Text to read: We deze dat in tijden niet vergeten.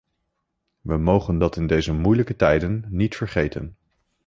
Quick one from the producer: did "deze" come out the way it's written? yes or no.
no